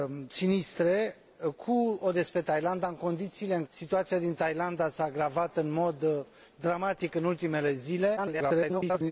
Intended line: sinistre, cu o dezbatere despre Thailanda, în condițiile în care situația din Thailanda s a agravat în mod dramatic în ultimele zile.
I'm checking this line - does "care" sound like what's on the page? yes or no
no